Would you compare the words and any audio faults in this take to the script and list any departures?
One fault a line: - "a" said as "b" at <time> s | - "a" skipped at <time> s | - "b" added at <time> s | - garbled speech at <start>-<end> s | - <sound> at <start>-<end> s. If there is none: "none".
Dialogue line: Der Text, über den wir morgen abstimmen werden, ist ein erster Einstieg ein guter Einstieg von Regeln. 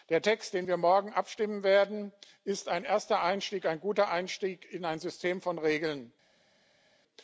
- "in ein System" added at 4.7 s